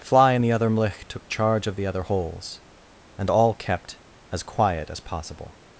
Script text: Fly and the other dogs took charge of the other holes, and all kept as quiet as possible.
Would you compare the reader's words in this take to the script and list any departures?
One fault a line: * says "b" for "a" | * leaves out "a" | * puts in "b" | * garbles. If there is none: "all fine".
* says "mlich" for "dogs"